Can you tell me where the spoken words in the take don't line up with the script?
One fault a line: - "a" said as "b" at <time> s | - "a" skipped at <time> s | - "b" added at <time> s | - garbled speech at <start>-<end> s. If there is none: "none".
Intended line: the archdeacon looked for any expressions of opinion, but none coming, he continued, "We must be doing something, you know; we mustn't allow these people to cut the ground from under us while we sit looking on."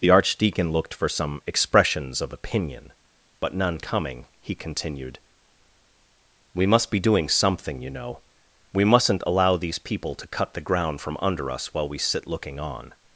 - "any" said as "some" at 1.1 s